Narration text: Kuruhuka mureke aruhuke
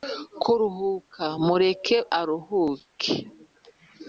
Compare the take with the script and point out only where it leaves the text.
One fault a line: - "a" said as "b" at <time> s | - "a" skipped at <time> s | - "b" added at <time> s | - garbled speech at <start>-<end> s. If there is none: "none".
none